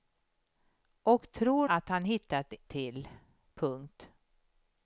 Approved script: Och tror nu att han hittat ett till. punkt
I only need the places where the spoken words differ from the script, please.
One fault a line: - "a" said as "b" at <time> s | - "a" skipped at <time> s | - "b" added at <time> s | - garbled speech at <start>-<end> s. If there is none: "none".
- "nu" skipped at 1.7 s
- "ett" skipped at 2.5 s